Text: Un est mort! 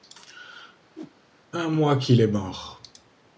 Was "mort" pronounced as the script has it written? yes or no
yes